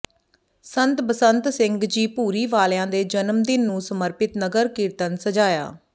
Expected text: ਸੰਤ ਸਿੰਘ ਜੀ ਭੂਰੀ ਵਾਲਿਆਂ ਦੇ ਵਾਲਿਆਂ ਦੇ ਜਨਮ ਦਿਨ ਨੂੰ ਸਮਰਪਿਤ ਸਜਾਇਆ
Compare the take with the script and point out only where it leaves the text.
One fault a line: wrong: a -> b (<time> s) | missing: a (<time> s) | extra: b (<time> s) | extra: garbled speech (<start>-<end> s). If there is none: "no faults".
extra: ਬਸੰਤ (1.0 s)
missing: ਵਾਲਿਆਂ ਦੇ (3.0 s)
extra: ਨਗਰ ਕੀਰਤਨ (4.4 s)